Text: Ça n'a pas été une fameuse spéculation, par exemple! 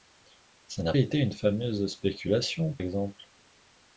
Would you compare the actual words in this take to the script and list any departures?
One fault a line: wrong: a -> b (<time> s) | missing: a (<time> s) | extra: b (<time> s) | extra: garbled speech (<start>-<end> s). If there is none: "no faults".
missing: pas (0.9 s)
missing: par (2.7 s)